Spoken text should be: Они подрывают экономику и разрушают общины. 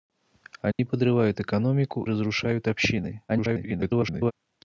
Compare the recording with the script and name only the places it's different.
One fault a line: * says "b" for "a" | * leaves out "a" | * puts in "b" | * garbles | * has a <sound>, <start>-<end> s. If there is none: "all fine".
* has a dropout, 0.7-0.8 s
* leaves out "и"
* garbles